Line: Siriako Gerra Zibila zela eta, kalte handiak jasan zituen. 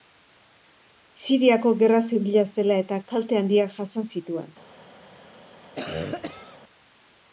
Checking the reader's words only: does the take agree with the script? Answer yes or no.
yes